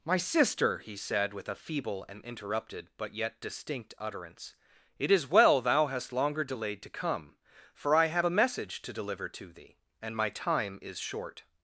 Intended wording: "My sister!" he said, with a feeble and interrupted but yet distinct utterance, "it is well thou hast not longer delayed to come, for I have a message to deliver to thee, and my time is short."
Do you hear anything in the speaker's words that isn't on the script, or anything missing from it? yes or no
yes